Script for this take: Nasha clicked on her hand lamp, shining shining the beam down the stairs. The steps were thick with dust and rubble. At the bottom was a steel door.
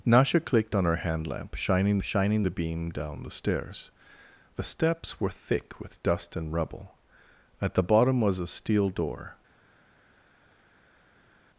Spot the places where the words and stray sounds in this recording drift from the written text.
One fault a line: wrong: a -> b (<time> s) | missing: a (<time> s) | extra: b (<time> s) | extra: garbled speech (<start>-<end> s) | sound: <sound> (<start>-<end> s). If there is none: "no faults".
no faults